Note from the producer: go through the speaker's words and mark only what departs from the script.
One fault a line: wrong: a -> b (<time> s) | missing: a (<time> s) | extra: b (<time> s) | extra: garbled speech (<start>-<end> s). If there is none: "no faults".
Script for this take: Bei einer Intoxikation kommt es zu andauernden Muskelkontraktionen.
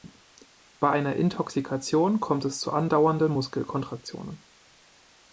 no faults